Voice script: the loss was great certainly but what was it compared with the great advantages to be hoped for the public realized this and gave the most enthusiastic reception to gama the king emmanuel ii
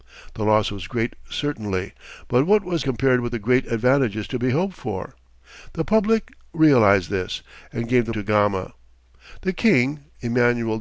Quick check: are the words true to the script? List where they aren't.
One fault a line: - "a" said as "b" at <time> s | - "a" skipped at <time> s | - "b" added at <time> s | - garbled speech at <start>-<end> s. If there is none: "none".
- "it" skipped at 2.9 s
- "most enthusiastic reception" skipped at 8.1 s